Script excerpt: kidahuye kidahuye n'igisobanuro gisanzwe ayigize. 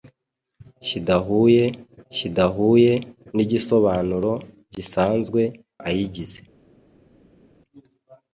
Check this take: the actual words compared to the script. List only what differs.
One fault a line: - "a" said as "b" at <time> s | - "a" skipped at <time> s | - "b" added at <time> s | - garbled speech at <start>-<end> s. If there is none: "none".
none